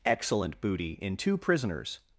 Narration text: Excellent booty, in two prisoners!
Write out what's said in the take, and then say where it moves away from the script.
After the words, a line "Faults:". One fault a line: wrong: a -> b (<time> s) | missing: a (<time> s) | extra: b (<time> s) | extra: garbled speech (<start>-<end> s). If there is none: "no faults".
Excellent booty, in two prisoners!
Faults:
no faults